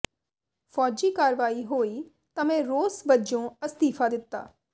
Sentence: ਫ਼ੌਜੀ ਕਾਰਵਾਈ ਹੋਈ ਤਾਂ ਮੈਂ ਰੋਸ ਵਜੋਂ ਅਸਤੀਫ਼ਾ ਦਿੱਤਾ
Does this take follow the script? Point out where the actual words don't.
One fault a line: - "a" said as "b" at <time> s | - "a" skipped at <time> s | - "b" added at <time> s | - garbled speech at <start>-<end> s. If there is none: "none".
none